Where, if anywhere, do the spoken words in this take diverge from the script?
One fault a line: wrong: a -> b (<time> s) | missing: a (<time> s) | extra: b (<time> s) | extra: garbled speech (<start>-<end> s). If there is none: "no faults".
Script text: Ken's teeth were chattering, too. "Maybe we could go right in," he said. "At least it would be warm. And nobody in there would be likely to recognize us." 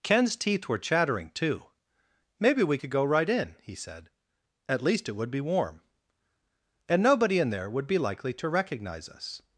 no faults